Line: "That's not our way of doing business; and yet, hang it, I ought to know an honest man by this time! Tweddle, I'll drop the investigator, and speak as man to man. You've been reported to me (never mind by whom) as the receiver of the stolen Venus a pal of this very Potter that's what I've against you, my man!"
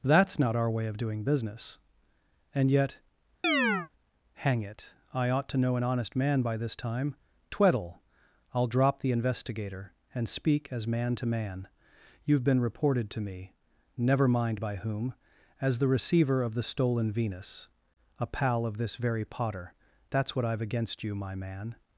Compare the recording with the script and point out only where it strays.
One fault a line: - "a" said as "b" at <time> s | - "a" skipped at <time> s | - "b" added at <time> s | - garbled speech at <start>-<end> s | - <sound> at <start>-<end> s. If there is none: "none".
- chirp at 3.4-3.9 s